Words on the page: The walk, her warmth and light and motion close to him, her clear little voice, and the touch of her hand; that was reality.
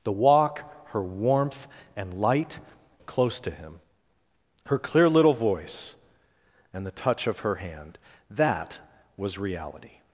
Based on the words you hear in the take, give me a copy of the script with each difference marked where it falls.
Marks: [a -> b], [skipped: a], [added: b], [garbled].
The walk, her warmth and light [skipped: and motion] close to him, her clear little voice, and the touch of her hand; that was reality.